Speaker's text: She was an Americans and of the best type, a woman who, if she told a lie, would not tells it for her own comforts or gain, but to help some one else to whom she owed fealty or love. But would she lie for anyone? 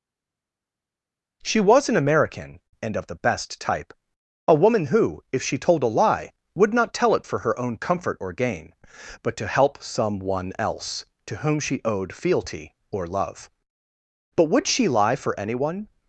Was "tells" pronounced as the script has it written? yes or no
no